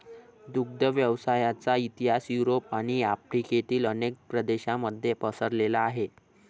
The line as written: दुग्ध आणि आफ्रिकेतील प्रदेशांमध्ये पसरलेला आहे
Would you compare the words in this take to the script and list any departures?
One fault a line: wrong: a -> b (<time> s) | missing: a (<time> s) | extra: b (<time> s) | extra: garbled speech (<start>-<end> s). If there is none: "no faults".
extra: व्यवसायाचा इतिहास युरोप (0.8 s)
extra: अनेक (3.9 s)